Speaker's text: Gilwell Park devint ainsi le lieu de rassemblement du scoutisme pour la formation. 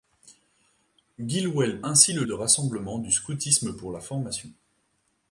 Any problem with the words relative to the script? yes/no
yes